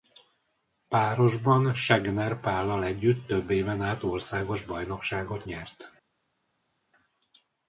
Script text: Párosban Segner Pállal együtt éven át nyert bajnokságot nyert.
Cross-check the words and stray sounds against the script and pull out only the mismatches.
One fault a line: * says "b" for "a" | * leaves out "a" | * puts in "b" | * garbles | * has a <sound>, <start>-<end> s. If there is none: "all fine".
* puts in "több"
* says "országos" for "nyert"